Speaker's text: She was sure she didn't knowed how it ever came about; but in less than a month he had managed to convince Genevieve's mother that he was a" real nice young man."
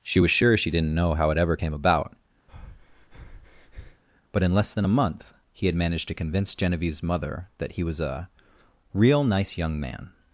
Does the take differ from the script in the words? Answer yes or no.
yes